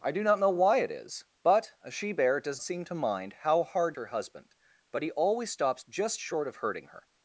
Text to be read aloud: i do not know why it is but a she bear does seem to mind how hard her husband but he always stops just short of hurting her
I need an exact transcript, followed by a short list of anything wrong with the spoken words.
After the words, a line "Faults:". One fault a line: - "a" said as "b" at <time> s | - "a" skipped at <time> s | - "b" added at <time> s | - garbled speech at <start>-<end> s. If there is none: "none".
i do not know why it is but a she bear does seem to mind how hard her husband but he always stops just short of hurting her
Faults:
none